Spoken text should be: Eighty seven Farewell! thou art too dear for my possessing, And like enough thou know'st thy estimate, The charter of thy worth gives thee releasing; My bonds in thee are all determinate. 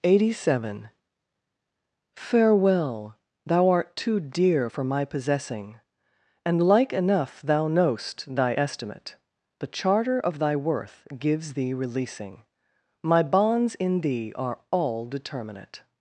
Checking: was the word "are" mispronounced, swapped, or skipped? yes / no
no